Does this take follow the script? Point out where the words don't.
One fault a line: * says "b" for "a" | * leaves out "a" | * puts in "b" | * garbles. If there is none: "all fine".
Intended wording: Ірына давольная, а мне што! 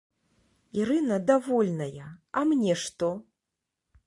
all fine